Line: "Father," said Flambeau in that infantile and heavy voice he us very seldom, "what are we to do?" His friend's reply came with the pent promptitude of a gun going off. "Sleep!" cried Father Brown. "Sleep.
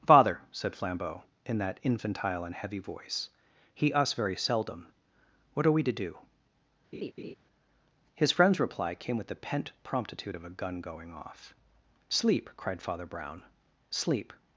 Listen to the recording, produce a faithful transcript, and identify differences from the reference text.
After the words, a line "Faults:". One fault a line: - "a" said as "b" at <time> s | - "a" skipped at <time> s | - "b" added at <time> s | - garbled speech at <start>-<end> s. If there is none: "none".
"Father," said Flambeau in that infantile and heavy voice he us very seldom, "what are we to do?" His friend's reply came with the pent promptitude of a gun going off. "Sleep!" cried Father Brown. "Sleep.
Faults:
none